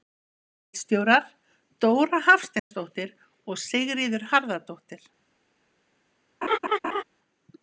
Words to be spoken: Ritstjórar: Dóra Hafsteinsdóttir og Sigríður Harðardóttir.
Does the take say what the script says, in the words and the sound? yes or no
no